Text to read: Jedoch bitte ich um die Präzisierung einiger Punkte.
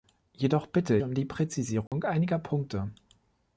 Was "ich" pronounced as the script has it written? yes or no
no